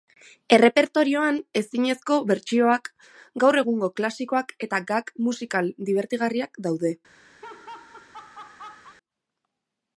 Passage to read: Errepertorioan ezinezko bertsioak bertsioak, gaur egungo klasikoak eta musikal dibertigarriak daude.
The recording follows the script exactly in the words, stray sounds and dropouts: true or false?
false